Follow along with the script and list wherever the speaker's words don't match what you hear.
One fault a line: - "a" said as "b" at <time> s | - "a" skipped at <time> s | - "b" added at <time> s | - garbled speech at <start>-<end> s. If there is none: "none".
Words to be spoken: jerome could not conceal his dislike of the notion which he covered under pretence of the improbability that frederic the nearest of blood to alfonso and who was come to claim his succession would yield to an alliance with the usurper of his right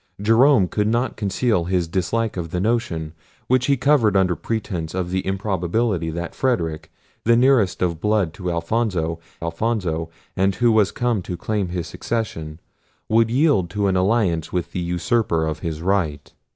- "alfonso" added at 9.4 s